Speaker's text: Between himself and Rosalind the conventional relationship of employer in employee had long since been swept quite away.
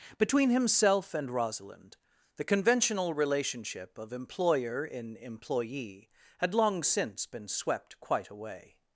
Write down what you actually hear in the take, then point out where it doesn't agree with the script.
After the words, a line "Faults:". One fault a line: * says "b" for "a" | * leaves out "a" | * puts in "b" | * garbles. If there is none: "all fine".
Between himself and Rosalind the conventional relationship of employer in employee had long since been swept quite away.
Faults:
all fine